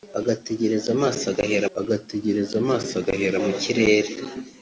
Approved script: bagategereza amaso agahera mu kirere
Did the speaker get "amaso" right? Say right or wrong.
right